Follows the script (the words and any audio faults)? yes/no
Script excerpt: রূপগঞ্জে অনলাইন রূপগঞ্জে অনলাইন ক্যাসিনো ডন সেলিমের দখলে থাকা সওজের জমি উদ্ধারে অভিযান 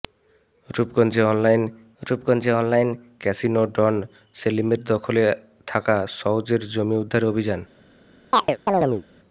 no